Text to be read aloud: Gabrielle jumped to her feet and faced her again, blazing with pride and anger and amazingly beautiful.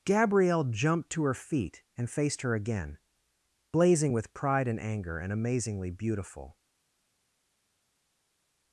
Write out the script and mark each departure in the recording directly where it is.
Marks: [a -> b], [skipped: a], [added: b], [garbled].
Gabrielle jumped to her feet and faced her again, blazing with pride and anger and amazingly beautiful.